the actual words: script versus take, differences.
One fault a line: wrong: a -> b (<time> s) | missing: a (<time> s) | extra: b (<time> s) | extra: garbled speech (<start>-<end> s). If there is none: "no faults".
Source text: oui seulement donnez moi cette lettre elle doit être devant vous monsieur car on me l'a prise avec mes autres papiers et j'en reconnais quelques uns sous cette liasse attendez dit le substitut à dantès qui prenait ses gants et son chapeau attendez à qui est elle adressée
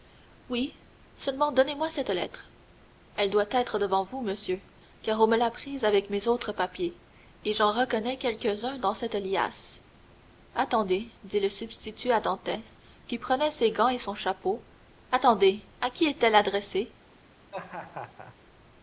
wrong: sous -> dans (8.8 s)